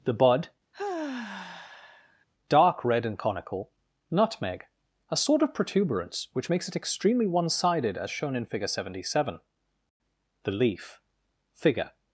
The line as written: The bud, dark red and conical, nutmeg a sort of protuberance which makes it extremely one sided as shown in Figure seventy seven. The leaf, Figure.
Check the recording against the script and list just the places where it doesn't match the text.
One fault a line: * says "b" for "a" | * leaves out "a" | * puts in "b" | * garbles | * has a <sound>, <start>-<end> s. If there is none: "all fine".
* has a sigh, 0.7-2.2 s